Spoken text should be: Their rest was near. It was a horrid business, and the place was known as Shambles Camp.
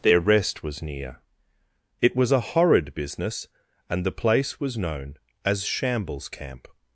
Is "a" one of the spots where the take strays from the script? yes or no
no